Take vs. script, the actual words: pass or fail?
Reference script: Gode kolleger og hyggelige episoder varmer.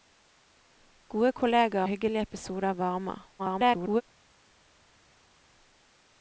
fail